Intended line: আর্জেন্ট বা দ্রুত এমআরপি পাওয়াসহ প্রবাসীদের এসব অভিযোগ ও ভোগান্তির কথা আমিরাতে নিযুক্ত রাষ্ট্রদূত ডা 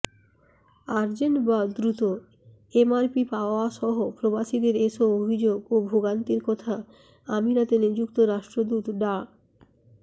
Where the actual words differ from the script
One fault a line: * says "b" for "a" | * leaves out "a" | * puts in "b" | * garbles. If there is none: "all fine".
all fine